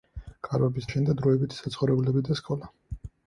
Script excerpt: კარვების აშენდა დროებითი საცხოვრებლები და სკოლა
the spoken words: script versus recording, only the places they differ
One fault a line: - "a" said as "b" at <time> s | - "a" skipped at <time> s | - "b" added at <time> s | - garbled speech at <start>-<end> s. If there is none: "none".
none